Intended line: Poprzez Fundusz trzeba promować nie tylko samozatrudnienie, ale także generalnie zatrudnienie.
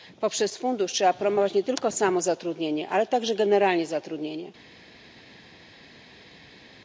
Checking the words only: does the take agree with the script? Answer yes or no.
yes